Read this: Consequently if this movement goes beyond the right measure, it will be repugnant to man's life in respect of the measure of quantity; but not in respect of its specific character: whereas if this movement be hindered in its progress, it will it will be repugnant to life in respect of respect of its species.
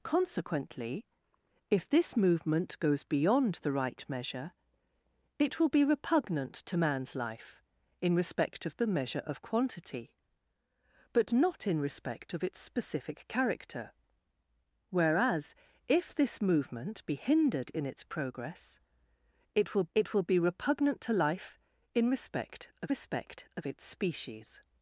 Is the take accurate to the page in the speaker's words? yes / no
yes